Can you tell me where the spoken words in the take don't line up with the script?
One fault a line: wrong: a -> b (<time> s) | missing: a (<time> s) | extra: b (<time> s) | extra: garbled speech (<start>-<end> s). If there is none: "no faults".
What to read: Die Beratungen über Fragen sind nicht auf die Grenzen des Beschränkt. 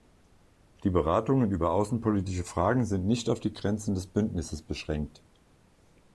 extra: außenpolitische (1.7 s)
extra: Bündnisses (4.1 s)